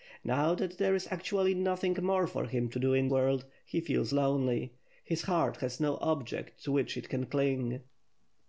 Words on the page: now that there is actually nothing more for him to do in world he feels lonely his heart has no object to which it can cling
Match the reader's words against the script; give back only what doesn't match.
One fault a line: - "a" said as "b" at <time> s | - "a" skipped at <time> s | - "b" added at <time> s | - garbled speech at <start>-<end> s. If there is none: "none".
none